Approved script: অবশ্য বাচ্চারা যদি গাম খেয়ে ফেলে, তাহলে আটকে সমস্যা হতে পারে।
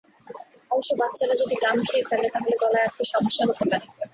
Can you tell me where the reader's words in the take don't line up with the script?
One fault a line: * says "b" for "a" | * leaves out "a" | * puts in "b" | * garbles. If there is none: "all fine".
* puts in "গলায়"